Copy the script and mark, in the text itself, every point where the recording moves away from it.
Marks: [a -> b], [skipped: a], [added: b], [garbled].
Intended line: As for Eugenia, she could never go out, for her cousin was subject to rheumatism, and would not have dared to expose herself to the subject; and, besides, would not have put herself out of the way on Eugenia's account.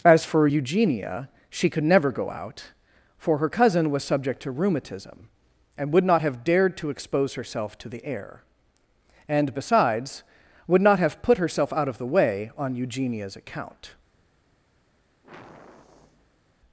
As for Eugenia, she could never go out, for her cousin was subject to rheumatism, and would not have dared to expose herself to the [subject; -> air] and, besides, would not have put herself out of the way on Eugenia's account.